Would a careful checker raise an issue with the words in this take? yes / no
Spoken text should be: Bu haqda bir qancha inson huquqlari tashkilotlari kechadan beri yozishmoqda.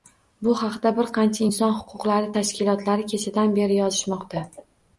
no